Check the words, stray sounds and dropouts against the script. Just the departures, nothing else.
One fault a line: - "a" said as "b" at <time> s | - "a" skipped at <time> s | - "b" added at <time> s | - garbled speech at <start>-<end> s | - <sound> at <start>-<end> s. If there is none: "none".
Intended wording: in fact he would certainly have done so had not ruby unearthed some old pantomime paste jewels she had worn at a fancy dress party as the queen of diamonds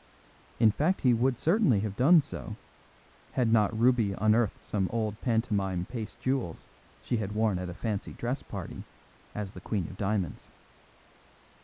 none